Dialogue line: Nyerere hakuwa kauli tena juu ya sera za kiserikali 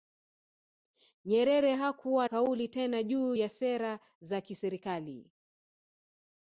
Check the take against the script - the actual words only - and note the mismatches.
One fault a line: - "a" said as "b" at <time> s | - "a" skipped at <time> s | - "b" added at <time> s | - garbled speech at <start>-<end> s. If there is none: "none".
none